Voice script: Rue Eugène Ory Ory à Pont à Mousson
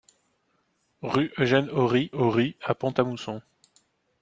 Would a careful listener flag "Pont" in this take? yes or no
no